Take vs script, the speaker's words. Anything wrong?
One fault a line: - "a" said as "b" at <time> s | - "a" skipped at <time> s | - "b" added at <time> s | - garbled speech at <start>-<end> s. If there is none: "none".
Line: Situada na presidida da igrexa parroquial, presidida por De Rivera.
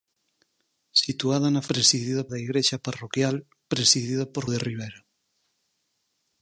none